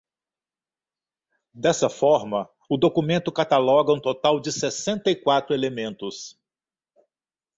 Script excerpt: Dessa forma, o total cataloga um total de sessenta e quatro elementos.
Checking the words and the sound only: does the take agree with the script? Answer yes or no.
no